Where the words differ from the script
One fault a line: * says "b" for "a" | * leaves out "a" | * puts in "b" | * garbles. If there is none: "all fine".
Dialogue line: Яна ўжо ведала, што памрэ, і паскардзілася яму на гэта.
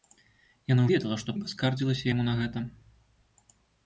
* leaves out "ўжо"
* leaves out "памрэ"